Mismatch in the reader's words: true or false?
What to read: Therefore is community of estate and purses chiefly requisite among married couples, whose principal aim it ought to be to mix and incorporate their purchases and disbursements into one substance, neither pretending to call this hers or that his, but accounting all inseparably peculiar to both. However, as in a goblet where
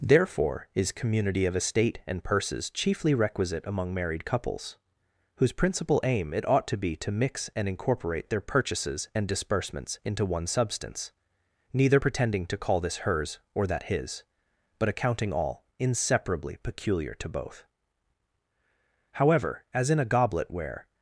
false